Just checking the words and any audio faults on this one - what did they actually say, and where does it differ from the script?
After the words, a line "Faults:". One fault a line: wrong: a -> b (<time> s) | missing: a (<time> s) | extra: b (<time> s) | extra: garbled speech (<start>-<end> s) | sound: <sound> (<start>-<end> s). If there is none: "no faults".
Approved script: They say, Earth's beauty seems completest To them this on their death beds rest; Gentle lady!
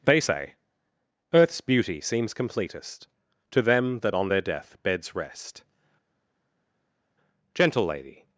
They say, Earth's beauty seems completest To them that on their death beds rest; Gentle lady!
Faults:
wrong: this -> that (4.0 s)